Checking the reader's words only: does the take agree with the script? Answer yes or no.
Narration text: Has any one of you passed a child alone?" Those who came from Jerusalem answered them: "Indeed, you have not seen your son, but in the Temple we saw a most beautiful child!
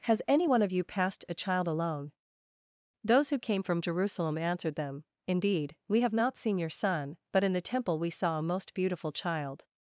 no